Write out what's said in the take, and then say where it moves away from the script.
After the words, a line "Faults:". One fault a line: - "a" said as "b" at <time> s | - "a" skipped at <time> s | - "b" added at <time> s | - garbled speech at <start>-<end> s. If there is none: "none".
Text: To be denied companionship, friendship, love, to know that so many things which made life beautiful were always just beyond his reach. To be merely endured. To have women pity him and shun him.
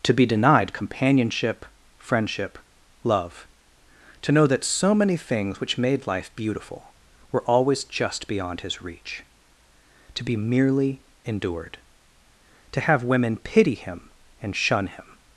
To be denied companionship, friendship, love, to know that so many things which made life beautiful were always just beyond his reach. To be merely endured. To have women pity him and shun him.
Faults:
none